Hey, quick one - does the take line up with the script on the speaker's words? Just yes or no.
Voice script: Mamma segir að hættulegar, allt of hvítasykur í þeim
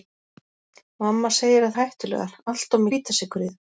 yes